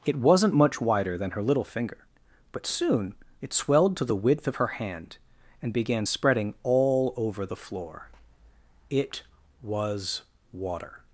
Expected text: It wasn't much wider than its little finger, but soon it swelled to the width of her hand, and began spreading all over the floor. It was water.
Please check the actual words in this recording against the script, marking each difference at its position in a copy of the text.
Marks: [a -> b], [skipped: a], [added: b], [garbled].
It wasn't much wider than [its -> her] little finger, but soon it swelled to the width of her hand, and began spreading all over the floor. It was water.